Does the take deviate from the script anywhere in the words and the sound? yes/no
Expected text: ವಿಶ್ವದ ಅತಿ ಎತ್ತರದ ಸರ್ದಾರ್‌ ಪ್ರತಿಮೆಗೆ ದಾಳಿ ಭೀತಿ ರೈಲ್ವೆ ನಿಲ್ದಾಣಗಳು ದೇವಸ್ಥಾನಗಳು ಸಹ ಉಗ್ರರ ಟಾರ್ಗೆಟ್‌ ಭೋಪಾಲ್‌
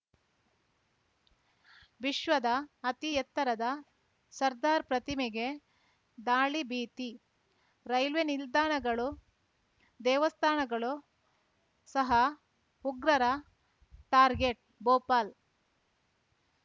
no